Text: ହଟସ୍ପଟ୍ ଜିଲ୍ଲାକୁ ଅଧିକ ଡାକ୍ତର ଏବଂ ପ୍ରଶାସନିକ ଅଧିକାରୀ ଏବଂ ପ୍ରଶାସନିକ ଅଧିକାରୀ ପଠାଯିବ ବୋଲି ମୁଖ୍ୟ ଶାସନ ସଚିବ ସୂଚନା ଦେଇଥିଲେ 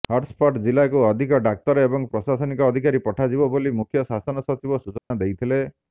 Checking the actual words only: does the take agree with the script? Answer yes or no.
no